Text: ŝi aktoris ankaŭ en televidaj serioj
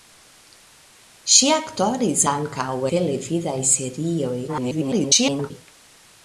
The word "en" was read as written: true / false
false